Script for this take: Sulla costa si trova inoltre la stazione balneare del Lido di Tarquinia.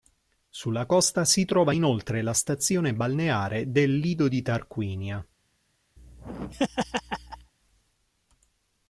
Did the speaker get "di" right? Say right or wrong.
right